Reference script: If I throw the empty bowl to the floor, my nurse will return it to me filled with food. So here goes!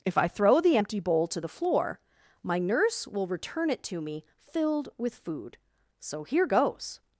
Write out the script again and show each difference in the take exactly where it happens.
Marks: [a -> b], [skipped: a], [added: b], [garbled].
If I throw the empty bowl to the floor, my nurse will return it to me filled with food. So here goes!